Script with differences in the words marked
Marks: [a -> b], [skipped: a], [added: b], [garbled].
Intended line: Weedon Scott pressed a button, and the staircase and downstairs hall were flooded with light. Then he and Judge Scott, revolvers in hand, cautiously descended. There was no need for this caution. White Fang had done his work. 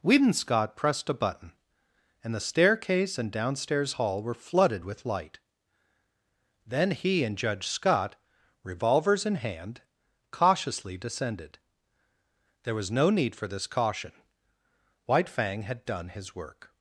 Weedon Scott pressed a button, and the staircase and downstairs hall were flooded with light. Then he and Judge Scott, revolvers in hand, cautiously descended. There was no need for this caution. White Fang had done his work.